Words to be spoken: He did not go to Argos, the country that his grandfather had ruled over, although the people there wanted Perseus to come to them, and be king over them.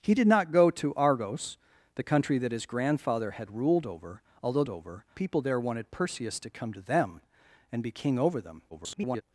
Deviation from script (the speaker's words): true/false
true